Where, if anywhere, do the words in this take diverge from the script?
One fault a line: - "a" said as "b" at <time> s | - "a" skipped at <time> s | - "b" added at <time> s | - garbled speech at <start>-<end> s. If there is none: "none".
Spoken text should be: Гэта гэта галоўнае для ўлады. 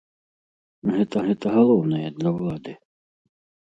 none